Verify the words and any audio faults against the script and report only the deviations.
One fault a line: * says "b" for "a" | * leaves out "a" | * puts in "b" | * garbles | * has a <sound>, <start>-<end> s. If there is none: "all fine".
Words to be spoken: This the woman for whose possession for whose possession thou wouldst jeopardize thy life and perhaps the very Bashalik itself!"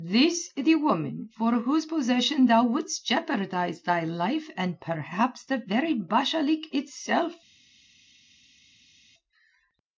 * leaves out "for whose possession"